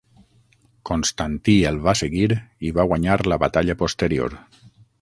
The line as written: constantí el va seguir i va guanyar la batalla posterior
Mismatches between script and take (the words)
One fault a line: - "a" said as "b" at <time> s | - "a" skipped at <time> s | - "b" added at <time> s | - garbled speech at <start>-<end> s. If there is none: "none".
none